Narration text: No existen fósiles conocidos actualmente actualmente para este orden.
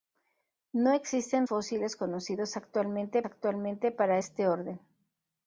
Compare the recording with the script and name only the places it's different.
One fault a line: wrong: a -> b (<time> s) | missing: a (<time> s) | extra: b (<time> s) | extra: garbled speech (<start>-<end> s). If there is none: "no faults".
no faults